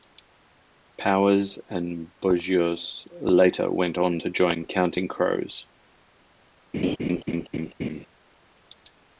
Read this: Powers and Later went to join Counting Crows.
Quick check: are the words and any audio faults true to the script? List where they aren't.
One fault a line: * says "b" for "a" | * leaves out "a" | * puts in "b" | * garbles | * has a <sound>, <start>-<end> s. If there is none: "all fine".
* puts in "Bogios"
* puts in "on"
* has a laugh, 6.7-8.1 s